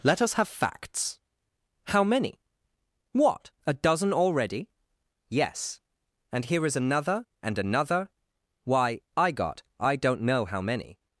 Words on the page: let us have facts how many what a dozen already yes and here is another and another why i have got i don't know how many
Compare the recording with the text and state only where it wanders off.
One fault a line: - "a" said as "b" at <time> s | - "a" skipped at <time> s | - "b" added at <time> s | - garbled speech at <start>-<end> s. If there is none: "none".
- "have" skipped at 9.3 s